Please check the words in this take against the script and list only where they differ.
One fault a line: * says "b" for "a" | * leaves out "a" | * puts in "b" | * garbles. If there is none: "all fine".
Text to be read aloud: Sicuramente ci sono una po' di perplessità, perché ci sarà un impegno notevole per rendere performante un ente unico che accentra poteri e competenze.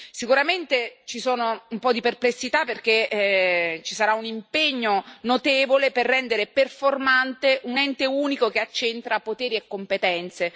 * says "un" for "una"